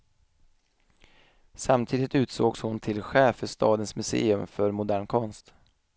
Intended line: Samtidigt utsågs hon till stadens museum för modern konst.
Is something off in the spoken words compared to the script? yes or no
yes